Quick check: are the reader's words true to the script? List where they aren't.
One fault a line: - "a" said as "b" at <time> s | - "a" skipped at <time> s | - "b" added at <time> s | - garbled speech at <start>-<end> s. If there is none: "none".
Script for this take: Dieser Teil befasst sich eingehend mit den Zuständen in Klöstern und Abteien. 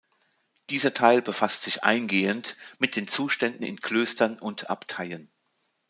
none